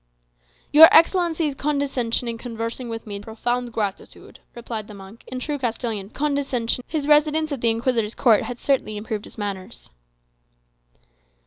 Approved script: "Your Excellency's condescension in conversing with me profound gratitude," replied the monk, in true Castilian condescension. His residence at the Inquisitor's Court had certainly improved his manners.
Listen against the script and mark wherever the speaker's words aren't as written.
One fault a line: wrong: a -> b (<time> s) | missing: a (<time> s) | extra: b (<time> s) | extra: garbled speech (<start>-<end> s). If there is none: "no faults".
no faults